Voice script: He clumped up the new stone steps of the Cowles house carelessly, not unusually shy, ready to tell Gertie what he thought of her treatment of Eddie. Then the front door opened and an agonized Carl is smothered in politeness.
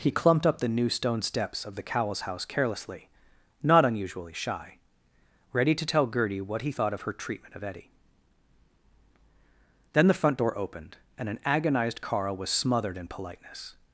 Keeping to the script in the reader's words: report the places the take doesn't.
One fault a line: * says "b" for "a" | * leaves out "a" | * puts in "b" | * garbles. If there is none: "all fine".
* says "was" for "is"